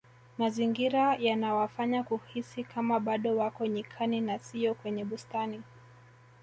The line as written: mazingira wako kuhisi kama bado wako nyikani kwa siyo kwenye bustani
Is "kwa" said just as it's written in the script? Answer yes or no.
no